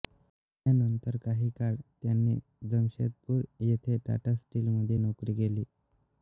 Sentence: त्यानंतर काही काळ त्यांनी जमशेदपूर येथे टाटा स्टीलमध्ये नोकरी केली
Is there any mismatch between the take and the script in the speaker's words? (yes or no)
no